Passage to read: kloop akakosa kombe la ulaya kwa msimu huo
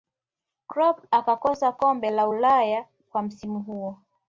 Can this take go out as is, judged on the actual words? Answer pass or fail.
pass